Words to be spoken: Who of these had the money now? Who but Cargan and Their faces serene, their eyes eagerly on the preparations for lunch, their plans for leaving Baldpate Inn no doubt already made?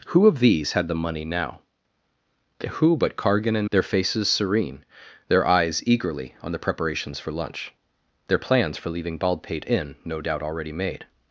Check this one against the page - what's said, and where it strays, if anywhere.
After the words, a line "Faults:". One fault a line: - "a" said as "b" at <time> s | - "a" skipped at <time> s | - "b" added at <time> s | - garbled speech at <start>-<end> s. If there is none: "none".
Who of these had the money now? Who but Cargan and Their faces serene, their eyes eagerly on the preparations for lunch, their plans for leaving Baldpate Inn no doubt already made?
Faults:
none